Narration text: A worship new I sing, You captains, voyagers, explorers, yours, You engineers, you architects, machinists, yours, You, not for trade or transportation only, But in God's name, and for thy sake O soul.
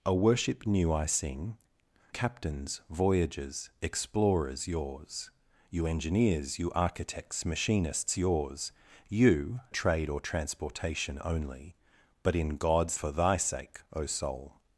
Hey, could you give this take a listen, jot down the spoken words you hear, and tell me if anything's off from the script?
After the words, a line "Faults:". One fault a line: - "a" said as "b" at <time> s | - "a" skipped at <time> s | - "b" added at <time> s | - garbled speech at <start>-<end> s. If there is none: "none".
A worship new I sing, Captains, voyagers, explorers, yours, You engineers, you architects, machinists, yours, You, trade or transportation only, But in God's for thy sake O soul.
Faults:
- "You" skipped at 1.6 s
- "not for" skipped at 9.6 s
- "name and" skipped at 13.0 s